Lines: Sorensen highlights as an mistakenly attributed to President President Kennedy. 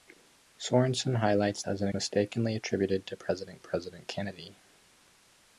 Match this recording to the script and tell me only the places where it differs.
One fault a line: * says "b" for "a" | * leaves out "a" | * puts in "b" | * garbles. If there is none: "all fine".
all fine